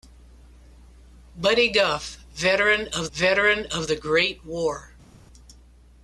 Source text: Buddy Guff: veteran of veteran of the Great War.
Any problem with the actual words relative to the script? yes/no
no